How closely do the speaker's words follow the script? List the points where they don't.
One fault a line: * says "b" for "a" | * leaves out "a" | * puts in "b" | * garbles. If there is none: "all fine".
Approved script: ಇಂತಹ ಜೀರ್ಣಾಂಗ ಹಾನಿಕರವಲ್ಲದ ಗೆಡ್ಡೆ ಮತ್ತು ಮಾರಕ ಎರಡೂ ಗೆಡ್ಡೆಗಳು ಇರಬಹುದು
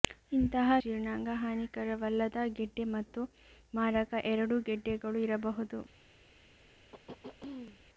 all fine